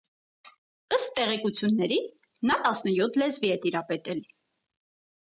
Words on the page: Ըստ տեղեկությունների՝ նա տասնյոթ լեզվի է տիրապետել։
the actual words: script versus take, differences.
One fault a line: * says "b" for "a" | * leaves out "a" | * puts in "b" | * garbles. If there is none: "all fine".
all fine